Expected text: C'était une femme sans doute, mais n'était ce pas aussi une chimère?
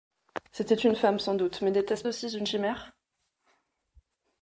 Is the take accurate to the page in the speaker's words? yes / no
no